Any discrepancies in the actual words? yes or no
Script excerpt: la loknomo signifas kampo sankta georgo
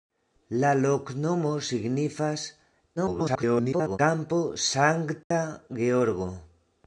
yes